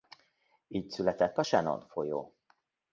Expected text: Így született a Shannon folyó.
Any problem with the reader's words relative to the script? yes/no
no